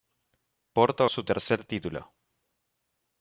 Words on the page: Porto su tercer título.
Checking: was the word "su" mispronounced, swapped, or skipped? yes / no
no